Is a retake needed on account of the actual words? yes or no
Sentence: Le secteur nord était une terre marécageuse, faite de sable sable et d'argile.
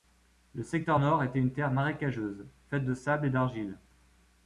yes